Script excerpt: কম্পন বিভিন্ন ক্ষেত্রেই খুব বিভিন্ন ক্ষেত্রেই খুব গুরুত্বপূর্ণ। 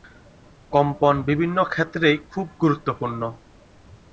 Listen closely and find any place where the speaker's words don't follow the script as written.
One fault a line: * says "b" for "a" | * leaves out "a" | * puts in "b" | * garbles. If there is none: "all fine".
* leaves out "বিভিন্ন ক্ষেত্রেই খুব"